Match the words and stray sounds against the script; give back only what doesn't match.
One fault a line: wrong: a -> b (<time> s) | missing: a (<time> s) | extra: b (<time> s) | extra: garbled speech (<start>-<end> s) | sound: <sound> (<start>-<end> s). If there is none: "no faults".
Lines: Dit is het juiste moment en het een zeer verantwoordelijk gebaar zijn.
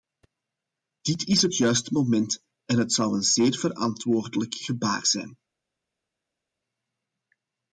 extra: zou (2.9 s)